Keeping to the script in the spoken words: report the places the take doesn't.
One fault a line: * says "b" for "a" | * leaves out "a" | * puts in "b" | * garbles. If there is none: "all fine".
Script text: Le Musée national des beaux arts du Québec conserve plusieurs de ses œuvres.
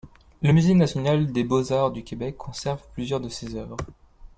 all fine